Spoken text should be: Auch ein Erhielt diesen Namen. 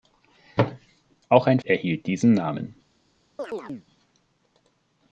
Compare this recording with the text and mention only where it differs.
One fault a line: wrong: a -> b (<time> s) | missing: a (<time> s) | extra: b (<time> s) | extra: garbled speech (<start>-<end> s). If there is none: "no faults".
no faults